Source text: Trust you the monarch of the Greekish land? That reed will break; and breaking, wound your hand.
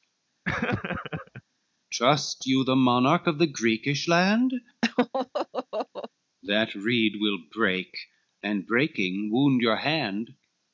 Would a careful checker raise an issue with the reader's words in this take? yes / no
no